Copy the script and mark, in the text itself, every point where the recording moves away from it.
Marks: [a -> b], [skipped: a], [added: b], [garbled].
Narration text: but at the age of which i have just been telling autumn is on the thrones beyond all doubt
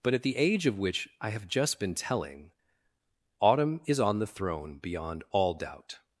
but at the age of which i have just been telling autumn is on the [thrones -> throne] beyond all doubt